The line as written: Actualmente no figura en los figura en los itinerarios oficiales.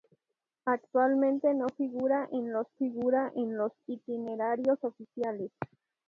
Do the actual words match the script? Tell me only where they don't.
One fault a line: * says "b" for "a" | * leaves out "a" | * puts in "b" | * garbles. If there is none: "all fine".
all fine